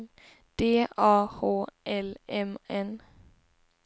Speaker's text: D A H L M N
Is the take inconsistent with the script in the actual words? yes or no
no